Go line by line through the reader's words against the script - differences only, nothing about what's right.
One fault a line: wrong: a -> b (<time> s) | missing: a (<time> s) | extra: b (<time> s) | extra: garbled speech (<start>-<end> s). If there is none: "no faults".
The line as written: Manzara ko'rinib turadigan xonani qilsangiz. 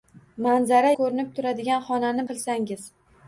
no faults